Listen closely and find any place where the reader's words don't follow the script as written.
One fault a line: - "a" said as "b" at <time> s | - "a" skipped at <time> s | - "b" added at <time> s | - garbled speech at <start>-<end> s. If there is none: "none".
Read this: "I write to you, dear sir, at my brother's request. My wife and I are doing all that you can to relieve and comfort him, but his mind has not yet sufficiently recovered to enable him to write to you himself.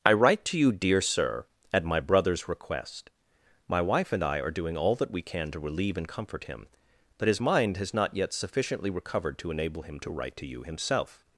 - "you" said as "we" at 5.1 s